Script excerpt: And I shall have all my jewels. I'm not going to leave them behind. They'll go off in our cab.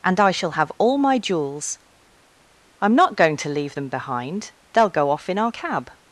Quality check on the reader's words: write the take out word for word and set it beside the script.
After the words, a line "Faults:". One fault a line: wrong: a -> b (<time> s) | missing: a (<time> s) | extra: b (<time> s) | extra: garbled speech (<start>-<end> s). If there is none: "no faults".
And I shall have all my jewels. I'm not going to leave them behind. They'll go off in our cab.
Faults:
no faults